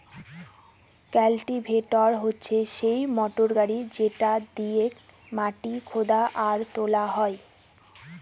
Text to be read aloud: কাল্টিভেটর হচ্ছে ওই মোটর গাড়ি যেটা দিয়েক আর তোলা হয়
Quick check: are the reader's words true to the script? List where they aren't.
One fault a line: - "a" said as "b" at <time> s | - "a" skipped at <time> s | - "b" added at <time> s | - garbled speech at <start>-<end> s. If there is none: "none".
- "ওই" said as "সেই" at 2.8 s
- "মাটি খুদা" added at 5.3 s